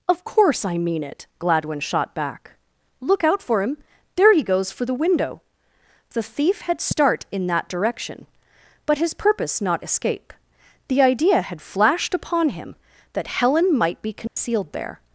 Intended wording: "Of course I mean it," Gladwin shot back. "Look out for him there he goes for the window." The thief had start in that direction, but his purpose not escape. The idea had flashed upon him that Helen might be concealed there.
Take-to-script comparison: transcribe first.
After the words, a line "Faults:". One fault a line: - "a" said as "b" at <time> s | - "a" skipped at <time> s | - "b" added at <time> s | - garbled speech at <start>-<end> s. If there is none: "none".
"Of course I mean it," Gladwin shot back. "Look out for him there he goes for the window." The thief had start in that direction, but his purpose not escape. The idea had flashed upon him that Helen might be concealed there.
Faults:
none